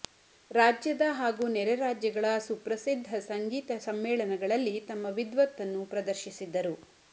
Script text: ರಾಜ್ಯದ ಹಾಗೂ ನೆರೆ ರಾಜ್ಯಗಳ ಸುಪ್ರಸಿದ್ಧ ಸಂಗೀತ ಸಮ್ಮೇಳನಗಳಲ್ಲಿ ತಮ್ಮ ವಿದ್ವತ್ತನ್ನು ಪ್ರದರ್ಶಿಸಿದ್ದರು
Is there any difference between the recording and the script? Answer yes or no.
no